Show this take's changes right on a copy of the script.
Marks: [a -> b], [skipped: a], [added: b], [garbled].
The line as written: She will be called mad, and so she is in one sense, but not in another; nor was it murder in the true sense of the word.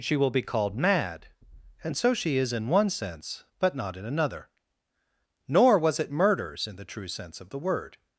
She will be called mad, and so she is in one sense, but not in another; nor was it [murder -> murders] in the true sense of the word.